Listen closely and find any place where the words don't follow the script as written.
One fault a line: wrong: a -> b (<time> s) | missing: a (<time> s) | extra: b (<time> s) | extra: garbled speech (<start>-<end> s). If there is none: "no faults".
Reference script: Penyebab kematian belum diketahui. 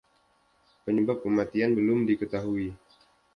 no faults